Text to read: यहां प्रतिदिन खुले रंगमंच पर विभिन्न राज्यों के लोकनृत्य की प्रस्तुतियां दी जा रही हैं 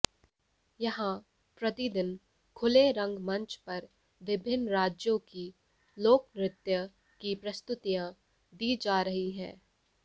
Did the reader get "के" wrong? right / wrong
wrong